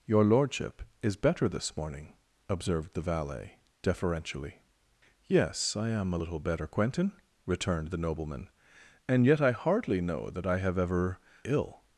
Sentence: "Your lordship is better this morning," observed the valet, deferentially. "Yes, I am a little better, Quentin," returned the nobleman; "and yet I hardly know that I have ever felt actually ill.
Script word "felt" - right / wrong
wrong